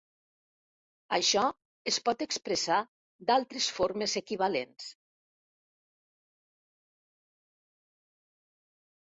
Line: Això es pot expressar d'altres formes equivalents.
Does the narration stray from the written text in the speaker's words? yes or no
no